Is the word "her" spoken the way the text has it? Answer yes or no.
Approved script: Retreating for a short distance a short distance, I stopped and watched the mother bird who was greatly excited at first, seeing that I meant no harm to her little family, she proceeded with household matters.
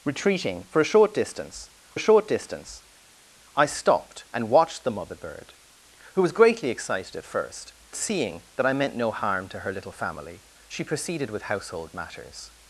yes